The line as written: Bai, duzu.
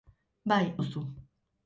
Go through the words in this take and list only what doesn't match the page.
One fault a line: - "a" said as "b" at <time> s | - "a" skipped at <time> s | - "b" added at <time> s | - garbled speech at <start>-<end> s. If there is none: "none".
none